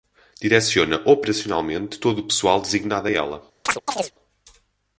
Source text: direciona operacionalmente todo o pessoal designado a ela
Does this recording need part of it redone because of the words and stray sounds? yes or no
yes